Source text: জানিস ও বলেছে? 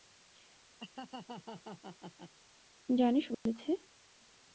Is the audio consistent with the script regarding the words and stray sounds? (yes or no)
no